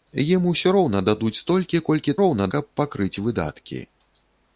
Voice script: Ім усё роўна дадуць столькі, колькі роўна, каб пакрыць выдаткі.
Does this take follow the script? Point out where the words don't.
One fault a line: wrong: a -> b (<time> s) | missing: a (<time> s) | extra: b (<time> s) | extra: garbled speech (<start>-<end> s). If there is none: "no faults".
no faults